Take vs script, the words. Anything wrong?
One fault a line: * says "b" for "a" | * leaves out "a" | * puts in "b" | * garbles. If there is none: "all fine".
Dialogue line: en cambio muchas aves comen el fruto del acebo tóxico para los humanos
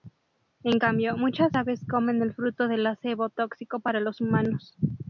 all fine